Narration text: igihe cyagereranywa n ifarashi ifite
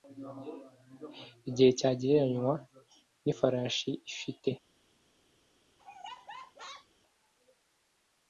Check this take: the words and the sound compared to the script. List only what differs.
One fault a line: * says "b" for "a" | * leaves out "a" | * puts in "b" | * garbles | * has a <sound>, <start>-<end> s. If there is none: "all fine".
* has a laugh, 5.8-6.9 s